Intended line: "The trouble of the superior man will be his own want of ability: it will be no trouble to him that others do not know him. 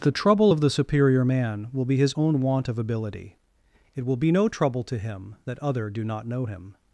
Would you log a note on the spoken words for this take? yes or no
yes